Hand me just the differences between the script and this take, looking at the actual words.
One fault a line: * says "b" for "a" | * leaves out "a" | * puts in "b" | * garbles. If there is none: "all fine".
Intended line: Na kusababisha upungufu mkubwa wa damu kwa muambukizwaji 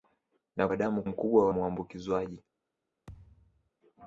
* leaves out "kusababisha upungufu mkubwa"
* says "mkubwa" for "kwa"